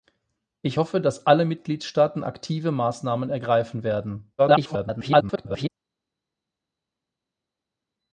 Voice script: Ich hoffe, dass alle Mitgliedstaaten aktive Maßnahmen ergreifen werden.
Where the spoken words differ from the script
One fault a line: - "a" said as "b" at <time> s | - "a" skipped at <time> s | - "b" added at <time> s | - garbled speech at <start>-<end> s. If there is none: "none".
- garbled speech at 4.4-5.7 s